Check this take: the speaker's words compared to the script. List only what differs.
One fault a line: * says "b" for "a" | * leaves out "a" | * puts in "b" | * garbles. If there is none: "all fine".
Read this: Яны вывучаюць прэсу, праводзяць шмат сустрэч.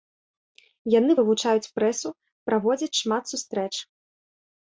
all fine